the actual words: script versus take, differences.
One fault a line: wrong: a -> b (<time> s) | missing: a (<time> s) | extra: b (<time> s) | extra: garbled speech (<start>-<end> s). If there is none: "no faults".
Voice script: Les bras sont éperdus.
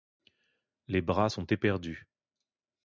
no faults